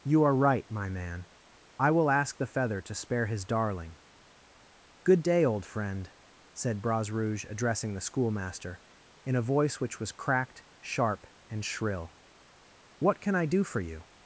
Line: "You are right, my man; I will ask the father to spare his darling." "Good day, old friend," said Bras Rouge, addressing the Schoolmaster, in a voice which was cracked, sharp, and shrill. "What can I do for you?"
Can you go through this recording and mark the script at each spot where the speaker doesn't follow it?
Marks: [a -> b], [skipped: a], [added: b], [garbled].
"You are right, my man; I will ask the [father -> feather] to spare his darling." "Good day, old friend," said Bras Rouge, addressing the Schoolmaster, in a voice which was cracked, sharp, and shrill. "What can I do for you?"